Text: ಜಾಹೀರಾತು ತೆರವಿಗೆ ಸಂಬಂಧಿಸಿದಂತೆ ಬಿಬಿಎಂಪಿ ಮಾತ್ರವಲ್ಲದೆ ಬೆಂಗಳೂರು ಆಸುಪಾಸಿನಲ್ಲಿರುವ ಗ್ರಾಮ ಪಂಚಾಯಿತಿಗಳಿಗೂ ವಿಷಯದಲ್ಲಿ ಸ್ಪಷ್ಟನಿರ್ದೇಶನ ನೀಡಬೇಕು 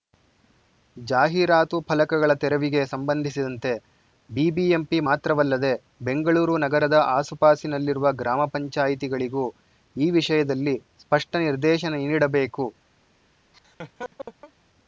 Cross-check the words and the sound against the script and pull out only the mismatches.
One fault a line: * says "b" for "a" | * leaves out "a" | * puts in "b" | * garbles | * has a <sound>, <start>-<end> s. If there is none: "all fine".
* puts in "ಫಲಕಗಳ"
* puts in "ನಗರದ"
* puts in "ಈ"
* has a laugh, 13.5-14.5 s